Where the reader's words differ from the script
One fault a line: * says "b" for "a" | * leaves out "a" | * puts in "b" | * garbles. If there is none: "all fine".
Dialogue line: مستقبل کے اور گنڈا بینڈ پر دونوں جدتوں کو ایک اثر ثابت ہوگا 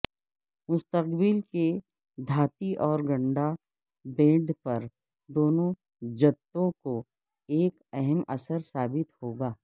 * puts in "دھاتی"
* puts in "اہم"